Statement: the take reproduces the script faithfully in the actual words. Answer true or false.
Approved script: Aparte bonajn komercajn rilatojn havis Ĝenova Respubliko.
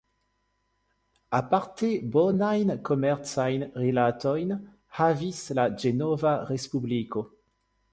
false